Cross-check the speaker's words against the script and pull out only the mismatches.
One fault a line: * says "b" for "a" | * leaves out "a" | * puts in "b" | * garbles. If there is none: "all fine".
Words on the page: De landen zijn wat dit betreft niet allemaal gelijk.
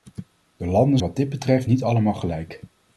* leaves out "zijn"